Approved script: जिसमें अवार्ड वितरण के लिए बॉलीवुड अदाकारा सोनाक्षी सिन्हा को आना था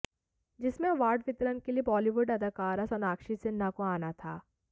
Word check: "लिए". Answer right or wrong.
right